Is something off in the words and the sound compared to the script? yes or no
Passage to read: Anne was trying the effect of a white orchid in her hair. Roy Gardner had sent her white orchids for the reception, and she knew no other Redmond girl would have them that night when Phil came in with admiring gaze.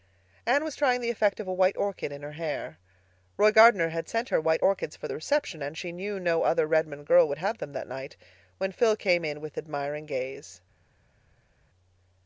no